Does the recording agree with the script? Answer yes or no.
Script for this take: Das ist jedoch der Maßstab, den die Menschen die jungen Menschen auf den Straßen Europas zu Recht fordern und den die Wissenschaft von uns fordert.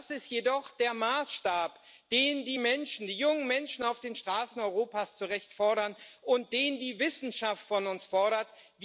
yes